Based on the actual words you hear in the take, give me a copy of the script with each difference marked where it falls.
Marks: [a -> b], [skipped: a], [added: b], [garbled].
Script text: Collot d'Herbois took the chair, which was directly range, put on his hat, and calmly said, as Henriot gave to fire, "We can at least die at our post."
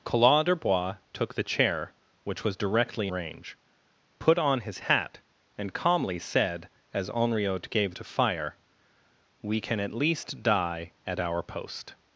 Collot d'Herbois took the chair, which was directly range, put on his hat, and calmly said, as Henriot gave to fire, "We can at least die at our post."